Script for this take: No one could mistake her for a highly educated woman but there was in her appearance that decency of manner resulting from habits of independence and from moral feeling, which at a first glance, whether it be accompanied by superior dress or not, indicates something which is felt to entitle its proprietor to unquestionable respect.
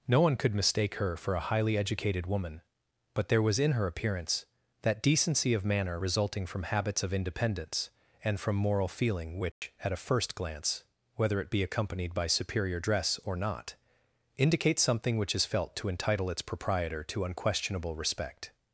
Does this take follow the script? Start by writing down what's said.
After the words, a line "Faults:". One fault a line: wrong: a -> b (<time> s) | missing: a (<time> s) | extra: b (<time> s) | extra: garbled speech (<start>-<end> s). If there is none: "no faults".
No one could mistake her for a highly educated woman but there was in her appearance that decency of manner resulting from habits of independence and from moral feeling, which at a first glance, whether it be accompanied by superior dress or not, indicates something which is felt to entitle its proprietor to unquestionable respect.
Faults:
no faults